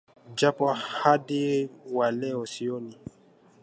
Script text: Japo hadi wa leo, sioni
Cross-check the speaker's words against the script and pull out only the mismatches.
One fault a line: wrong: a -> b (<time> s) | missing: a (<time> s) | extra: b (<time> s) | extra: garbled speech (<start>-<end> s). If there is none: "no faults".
no faults